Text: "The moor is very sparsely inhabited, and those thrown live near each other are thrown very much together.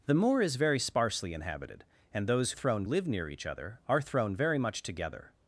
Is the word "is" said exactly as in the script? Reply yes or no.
yes